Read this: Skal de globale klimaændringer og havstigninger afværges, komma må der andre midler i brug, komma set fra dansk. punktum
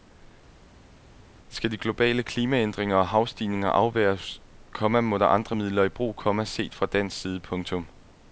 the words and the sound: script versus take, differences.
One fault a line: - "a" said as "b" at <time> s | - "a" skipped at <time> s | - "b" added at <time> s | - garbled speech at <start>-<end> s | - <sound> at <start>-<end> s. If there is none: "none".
- "side" added at 7.2 s